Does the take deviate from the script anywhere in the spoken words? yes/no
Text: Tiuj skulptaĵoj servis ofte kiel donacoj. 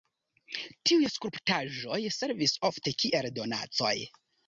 no